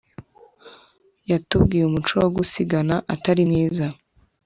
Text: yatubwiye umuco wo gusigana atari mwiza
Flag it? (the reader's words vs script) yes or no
no